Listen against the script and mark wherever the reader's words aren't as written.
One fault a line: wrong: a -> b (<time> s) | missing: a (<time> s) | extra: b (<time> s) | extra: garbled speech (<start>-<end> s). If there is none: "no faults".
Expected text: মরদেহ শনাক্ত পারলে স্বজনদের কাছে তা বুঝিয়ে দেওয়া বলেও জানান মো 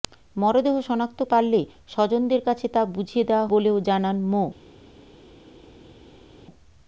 no faults